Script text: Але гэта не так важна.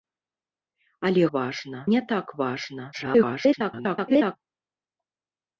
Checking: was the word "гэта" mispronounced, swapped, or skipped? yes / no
yes